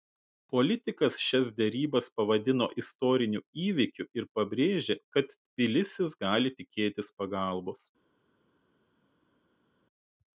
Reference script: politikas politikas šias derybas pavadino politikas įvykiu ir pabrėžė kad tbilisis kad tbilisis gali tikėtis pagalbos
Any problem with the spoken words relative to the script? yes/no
yes